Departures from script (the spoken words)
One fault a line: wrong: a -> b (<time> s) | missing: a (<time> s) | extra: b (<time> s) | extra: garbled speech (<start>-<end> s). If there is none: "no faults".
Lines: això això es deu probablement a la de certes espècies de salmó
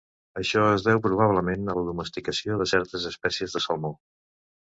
missing: això (0.6 s)
extra: domesticació (1.9 s)